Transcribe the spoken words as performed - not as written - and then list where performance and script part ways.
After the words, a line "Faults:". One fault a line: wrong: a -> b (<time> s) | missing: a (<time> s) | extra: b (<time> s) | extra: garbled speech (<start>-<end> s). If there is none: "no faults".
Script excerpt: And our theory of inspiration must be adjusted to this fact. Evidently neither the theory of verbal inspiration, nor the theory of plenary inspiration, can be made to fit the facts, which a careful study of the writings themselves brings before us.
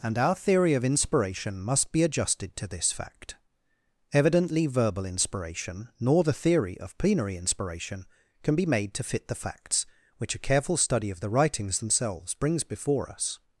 And our theory of inspiration must be adjusted to this fact. Evidently verbal inspiration, nor the theory of plenary inspiration, can be made to fit the facts, which a careful study of the writings themselves brings before us.
Faults:
missing: neither the theory of (4.7 s)